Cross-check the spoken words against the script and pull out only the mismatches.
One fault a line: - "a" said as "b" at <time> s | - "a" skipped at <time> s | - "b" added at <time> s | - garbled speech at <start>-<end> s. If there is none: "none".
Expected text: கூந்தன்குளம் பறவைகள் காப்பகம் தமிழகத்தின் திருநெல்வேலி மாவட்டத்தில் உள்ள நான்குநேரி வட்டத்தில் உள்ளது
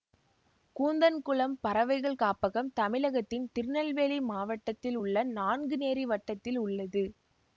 none